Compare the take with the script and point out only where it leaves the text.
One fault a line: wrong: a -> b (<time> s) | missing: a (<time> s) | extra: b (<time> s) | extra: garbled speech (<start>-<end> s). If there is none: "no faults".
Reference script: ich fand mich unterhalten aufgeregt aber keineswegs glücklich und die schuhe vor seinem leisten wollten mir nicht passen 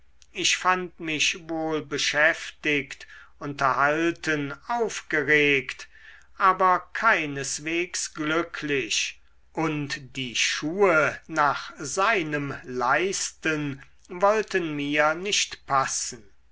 extra: wohl beschäftigt (1.5 s)
wrong: vor -> nach (11.3 s)